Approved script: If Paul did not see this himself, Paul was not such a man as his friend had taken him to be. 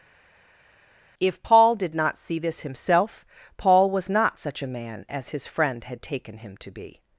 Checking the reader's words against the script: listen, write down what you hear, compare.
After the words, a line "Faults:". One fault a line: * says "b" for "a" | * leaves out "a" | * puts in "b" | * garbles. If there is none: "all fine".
If Paul did not see this himself, Paul was not such a man as his friend had taken him to be.
Faults:
all fine